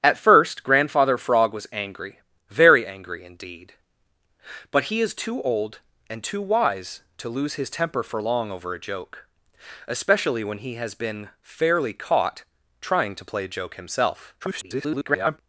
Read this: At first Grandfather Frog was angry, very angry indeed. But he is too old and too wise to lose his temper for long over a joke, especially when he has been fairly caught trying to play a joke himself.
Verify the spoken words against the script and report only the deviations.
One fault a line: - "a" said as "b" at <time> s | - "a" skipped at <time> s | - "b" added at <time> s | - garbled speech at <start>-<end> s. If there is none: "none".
- garbled speech at 14.4-15.4 s